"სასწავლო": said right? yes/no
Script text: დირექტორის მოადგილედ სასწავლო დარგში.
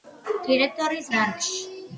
no